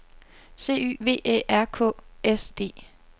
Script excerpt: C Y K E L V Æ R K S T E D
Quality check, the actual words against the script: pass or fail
fail